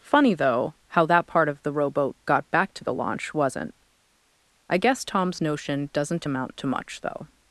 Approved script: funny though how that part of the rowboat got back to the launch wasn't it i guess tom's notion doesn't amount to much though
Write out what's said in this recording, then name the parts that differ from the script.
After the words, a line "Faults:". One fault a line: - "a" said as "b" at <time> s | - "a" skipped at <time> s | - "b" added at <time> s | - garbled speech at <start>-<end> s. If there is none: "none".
funny though how that part of the rowboat got back to the launch wasn't i guess tom's notion doesn't amount to much though
Faults:
- "it" skipped at 3.7 s